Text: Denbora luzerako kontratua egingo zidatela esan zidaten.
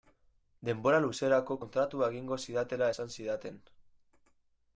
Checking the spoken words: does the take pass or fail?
pass